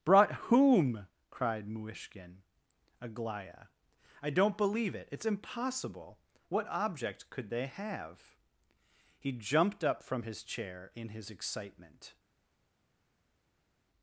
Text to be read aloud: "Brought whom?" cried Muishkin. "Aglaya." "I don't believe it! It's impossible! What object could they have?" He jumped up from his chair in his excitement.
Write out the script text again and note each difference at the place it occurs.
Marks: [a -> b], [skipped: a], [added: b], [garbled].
"Brought whom?" cried Muishkin. "Aglaya." "I don't believe it! It's impossible! What object could they have?" He jumped up from his chair in his excitement.